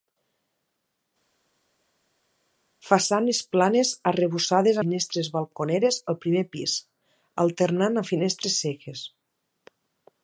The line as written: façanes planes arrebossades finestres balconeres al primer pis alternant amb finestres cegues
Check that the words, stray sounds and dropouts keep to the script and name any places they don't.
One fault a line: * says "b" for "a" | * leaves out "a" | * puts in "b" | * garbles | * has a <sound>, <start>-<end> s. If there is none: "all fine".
all fine